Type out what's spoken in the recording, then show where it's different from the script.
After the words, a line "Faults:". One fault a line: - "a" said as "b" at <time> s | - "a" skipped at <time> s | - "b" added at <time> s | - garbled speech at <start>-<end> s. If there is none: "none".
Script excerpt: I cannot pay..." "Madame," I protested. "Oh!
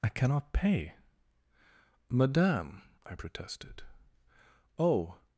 I cannot pay..." "Madame," I protested. "Oh!
Faults:
none